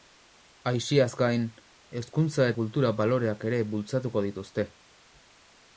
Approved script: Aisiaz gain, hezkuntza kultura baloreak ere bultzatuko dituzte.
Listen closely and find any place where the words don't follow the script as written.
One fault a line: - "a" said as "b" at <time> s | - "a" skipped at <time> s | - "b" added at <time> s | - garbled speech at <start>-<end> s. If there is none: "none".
none